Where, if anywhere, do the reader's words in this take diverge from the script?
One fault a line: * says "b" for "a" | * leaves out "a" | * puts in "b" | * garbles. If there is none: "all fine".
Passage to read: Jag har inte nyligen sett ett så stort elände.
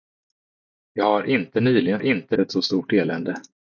* says "inte" for "sett"